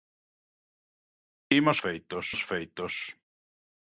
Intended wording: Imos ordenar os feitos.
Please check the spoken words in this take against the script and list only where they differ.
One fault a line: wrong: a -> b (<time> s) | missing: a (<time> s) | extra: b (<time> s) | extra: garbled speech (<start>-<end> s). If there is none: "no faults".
wrong: ordenar -> feitos (1.8 s)